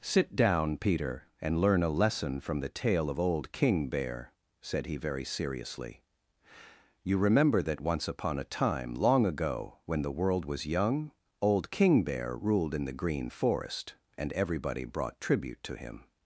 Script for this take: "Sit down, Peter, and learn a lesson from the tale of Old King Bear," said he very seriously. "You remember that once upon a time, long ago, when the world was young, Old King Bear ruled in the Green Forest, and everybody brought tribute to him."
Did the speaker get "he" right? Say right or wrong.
right